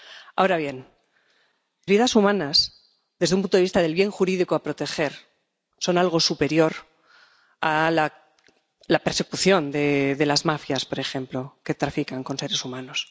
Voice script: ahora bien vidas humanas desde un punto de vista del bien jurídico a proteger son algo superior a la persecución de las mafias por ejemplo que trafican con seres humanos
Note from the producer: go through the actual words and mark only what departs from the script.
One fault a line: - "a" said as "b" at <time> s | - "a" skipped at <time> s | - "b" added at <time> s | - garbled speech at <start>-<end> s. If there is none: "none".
none